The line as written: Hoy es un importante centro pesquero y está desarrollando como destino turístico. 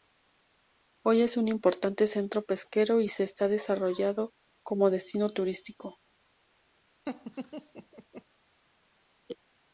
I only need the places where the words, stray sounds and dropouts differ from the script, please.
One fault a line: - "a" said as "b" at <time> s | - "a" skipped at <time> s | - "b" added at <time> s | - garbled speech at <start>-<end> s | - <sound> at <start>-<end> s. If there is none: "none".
- "se" added at 3.1 s
- laugh at 7.1-8.2 s